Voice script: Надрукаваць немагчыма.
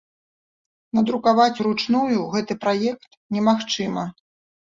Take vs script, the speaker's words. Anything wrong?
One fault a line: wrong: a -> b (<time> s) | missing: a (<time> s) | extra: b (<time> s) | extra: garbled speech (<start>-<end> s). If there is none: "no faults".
extra: уручную гэты праект (1.6 s)